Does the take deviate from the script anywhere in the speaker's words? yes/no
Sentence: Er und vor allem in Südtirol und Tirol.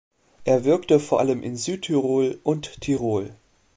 yes